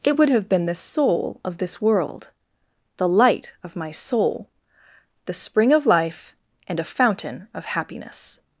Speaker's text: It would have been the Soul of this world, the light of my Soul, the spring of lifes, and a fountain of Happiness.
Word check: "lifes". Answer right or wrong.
wrong